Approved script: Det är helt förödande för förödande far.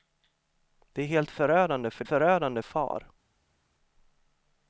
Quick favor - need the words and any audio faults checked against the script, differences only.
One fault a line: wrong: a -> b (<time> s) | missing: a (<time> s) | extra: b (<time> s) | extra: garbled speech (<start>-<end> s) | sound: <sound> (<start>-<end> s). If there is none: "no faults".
no faults